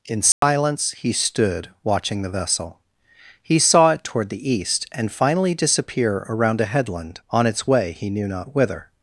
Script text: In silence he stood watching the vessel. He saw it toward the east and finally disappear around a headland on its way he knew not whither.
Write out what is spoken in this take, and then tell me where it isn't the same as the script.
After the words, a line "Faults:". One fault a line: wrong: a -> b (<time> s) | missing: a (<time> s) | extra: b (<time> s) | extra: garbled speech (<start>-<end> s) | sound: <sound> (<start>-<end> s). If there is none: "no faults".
In silence he stood watching the vessel. He saw it toward the east and finally disappear around a headland on its way he knew not whither.
Faults:
sound: dropout (0.3-0.4 s)